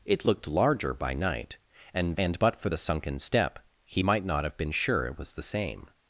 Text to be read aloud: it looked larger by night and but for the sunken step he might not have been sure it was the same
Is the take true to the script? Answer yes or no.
no